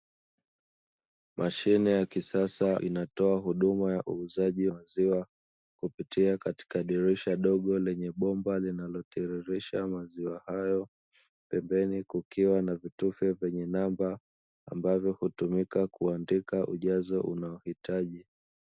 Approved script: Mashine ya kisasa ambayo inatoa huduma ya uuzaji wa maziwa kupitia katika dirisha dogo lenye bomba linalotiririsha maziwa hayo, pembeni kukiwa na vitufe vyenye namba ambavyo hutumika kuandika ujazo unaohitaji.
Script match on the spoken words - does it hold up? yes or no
no